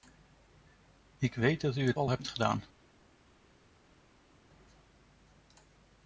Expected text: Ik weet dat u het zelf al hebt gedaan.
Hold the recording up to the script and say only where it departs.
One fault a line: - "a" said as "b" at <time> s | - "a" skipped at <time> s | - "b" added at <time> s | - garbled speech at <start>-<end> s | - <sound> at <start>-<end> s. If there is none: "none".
- "zelf" skipped at 2.0 s